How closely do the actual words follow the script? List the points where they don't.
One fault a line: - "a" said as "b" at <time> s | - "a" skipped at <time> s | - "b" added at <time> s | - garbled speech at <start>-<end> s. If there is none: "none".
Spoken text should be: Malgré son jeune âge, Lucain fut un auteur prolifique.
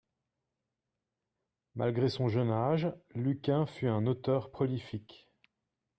none